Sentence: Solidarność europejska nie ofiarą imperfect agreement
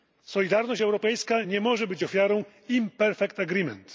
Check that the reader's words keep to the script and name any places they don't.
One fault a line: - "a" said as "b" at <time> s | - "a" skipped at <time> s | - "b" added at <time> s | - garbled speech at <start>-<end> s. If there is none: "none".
- "może być" added at 1.6 s